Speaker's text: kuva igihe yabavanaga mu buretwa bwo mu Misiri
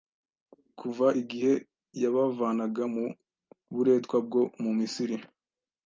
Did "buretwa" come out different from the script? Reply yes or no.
no